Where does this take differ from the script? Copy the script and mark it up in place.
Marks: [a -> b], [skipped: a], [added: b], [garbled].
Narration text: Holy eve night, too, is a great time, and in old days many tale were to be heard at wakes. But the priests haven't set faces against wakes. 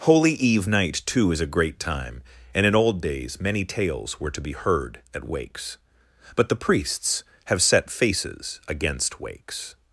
Holy eve night, too, is a great time, and in old days many [tale -> tales] were to be heard at wakes. But the priests [haven't -> have] set faces against wakes.